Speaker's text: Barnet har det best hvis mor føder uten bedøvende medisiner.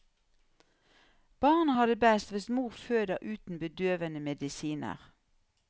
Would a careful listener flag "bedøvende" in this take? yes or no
no